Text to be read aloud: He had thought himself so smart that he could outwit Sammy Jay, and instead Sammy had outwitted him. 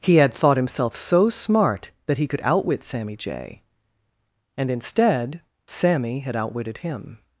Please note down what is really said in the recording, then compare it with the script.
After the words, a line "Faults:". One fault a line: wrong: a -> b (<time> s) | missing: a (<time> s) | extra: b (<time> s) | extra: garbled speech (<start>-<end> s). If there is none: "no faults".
He had thought himself so smart that he could outwit Sammy Jay, and instead Sammy had outwitted him.
Faults:
no faults